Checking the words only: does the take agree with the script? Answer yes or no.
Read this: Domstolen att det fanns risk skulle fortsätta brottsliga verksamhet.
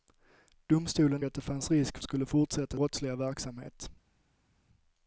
yes